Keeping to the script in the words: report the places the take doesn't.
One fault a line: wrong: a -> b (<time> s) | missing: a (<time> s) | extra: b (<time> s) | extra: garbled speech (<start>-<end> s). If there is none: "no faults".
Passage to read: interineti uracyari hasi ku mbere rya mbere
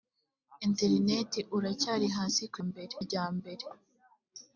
no faults